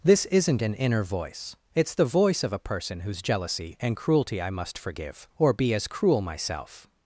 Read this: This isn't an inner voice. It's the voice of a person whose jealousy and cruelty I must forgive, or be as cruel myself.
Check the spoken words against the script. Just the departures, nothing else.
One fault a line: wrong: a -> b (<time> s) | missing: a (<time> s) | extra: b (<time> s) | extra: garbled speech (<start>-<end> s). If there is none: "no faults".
no faults